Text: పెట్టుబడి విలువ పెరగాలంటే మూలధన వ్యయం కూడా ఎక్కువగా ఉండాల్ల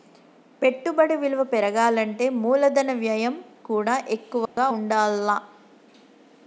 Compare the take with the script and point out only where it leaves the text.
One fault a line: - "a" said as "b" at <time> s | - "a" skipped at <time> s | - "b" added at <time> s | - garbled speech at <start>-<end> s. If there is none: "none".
none